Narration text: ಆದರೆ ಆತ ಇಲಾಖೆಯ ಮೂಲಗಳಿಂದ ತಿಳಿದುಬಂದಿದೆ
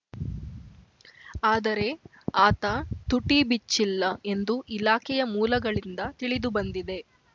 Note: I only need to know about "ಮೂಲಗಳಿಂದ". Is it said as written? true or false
true